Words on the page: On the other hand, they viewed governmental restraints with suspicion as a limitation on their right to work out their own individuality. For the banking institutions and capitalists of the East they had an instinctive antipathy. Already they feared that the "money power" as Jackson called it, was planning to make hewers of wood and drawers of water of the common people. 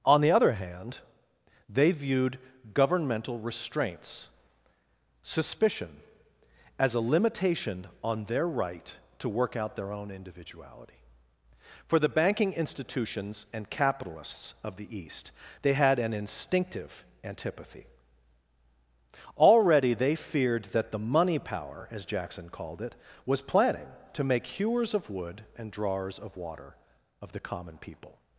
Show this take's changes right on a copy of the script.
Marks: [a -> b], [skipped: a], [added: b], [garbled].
On the other hand, they viewed governmental restraints [skipped: with] suspicion as a limitation on their right to work out their own individuality. For the banking institutions and capitalists of the East they had an instinctive antipathy. Already they feared that the "money power" as Jackson called it, was planning to make hewers of wood and drawers of water of the common people.